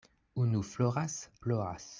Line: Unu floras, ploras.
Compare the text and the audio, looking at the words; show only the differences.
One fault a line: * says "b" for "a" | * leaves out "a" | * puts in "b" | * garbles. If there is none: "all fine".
all fine